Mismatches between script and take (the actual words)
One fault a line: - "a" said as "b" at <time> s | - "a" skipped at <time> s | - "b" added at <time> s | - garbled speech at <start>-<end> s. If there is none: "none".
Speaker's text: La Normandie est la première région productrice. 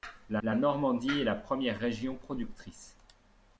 - "la" added at 0.4 s